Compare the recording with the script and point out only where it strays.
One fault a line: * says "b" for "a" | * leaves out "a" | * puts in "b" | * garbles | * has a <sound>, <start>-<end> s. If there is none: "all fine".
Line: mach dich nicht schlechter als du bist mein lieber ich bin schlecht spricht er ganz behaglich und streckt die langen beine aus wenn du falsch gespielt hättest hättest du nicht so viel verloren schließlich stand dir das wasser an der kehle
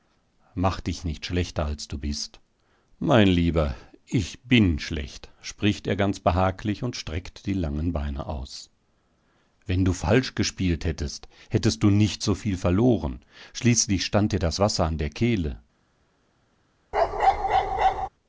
* has a bark, 16.9-18.1 s